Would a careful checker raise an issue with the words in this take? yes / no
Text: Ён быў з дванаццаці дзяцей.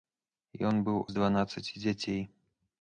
no